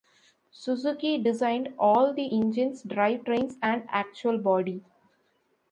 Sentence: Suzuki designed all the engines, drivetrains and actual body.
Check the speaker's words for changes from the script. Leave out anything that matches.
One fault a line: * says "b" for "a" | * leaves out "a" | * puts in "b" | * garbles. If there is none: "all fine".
all fine